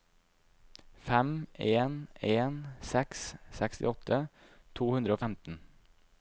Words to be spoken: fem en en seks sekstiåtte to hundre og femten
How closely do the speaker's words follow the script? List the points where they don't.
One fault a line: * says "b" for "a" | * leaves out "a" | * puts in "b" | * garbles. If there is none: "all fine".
all fine